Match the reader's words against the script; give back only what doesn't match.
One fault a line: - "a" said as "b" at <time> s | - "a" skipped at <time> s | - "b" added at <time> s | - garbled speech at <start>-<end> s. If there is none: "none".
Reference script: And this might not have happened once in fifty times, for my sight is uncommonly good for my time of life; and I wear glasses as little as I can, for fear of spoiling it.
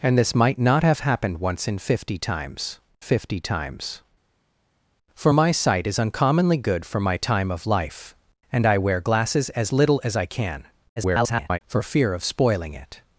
- "fifty times" added at 3.0 s
- garbled speech at 11.0-11.6 s